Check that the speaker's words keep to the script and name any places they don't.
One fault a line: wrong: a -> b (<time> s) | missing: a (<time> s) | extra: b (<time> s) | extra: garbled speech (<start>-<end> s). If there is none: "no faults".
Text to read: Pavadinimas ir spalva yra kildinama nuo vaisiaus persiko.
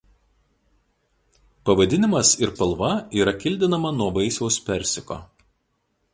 no faults